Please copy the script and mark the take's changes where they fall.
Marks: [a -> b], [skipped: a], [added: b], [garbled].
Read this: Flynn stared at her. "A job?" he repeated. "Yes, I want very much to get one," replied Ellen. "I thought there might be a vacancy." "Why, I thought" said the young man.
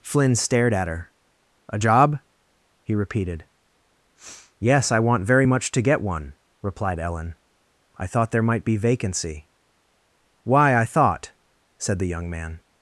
Flynn stared at her. "A job?" he repeated. "Yes, I want very much to get one," replied Ellen. "I thought there might be [skipped: a] vacancy." "Why, I thought" said the young man.